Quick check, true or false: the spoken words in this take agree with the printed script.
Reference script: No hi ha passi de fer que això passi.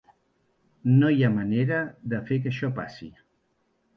false